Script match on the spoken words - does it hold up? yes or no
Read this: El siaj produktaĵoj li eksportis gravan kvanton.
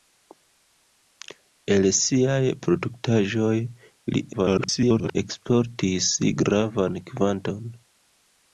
no